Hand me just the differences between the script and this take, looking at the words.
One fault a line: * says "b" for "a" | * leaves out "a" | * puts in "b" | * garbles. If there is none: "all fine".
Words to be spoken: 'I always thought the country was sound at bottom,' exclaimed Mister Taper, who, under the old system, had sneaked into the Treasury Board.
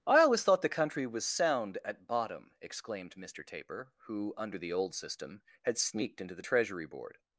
all fine